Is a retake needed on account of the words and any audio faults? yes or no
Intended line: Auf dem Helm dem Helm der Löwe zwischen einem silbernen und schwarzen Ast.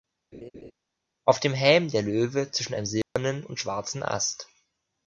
yes